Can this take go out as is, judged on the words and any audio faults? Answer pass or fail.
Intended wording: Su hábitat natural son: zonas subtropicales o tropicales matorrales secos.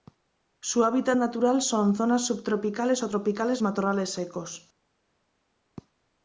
pass